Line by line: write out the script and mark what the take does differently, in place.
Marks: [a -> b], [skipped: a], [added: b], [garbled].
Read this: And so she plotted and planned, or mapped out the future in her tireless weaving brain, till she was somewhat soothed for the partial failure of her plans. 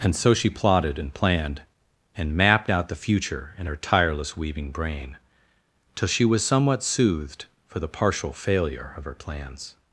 And so she plotted and planned, [or -> and] mapped out the future in her tireless weaving brain, till she was somewhat soothed for the partial failure of her plans.